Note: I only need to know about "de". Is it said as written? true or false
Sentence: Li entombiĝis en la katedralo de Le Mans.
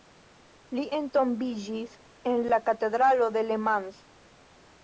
true